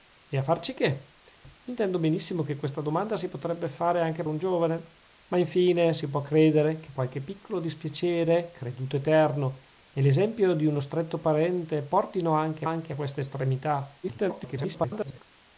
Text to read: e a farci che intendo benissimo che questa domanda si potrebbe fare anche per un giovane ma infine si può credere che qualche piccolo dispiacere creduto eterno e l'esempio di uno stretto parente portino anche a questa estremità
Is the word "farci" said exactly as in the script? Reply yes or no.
yes